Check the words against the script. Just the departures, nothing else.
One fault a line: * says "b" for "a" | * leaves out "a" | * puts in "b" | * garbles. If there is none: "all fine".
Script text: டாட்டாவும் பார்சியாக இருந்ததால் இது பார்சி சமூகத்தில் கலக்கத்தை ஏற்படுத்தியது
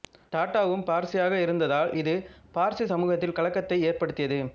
all fine